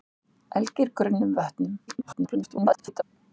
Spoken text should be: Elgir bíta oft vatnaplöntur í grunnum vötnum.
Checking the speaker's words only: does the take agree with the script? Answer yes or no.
no